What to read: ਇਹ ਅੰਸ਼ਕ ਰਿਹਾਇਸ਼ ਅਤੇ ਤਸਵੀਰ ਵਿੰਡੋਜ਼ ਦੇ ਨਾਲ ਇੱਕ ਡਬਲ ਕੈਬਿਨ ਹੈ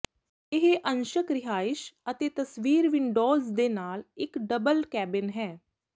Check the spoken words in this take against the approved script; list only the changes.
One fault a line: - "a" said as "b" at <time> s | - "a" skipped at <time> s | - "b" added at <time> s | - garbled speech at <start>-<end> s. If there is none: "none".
none